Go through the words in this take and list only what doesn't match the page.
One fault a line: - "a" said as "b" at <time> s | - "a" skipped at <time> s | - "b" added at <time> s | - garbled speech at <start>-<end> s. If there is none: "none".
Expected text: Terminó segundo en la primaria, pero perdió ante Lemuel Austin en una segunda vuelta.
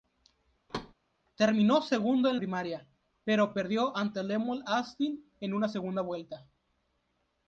- "la" skipped at 2.4 s